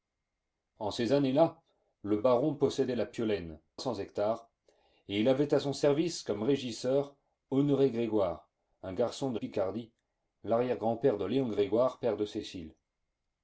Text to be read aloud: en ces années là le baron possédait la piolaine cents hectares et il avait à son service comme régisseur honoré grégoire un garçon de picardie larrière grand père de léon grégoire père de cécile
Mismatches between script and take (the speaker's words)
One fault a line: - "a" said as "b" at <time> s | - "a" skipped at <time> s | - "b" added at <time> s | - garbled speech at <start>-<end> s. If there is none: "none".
none